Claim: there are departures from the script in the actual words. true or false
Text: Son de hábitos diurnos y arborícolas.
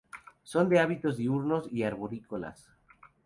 false